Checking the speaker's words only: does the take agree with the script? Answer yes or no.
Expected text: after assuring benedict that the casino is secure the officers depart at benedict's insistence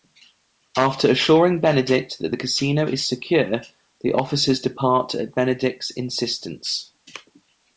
yes